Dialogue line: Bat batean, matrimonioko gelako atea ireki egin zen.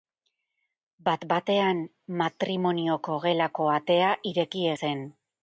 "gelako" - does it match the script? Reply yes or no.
yes